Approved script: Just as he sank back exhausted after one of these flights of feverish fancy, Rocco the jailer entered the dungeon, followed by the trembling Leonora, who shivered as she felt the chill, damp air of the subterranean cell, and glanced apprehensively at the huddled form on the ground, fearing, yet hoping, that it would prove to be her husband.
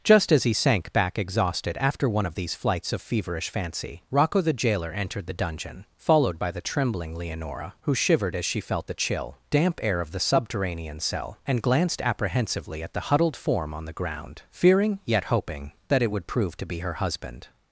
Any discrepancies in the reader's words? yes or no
no